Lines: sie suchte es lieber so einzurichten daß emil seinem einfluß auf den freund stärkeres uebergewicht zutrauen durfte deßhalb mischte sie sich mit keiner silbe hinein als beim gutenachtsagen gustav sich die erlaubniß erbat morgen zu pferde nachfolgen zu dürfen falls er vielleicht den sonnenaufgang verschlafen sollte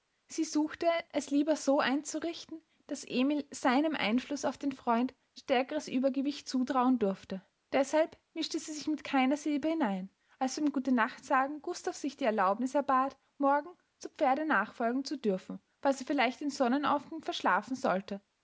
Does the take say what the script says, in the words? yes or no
yes